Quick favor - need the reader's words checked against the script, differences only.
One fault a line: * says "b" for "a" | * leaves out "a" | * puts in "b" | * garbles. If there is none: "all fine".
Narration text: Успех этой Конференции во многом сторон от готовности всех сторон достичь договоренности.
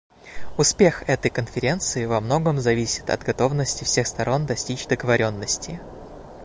* says "зависит" for "сторон"